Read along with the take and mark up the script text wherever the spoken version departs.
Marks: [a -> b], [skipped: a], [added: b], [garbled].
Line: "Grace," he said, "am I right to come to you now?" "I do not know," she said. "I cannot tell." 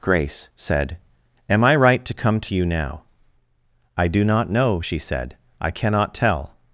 "Grace," [skipped: he] said, "am I right to come to you now?" "I do not know," she said. "I cannot tell."